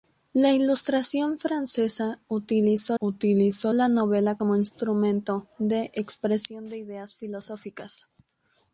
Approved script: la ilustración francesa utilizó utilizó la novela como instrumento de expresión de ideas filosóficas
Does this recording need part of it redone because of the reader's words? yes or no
no